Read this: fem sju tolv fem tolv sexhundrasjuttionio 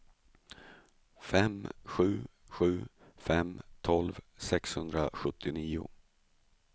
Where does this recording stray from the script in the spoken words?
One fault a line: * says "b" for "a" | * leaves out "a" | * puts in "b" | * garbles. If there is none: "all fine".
* says "sju" for "tolv"